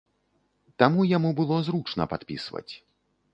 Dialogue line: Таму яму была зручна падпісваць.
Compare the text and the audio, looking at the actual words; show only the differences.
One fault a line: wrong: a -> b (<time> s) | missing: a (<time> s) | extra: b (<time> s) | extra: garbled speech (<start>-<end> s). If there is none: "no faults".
wrong: была -> было (1.4 s)